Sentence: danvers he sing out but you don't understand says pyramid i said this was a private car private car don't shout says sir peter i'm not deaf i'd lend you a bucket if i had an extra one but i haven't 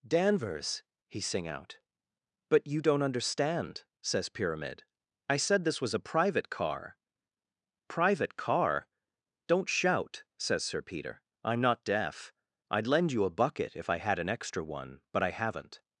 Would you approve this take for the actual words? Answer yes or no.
yes